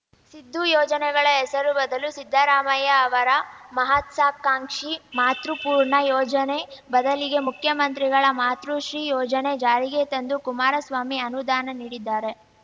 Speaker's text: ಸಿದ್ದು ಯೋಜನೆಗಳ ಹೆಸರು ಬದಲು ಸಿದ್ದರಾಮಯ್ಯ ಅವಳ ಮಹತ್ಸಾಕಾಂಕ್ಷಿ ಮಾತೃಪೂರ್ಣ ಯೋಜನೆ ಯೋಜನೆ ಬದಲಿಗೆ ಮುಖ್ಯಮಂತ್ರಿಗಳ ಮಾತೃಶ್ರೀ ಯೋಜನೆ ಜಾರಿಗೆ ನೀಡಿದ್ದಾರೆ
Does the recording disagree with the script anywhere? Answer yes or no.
yes